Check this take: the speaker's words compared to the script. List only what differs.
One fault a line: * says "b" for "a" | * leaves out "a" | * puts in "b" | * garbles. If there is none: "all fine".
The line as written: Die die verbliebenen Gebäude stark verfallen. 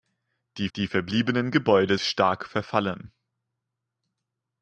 all fine